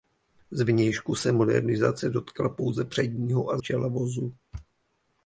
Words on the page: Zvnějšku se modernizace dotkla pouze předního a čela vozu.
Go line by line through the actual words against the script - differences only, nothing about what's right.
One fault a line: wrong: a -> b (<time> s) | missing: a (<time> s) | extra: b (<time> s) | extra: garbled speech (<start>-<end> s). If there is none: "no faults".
no faults